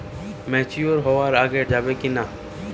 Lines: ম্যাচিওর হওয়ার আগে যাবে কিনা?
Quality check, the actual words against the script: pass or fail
pass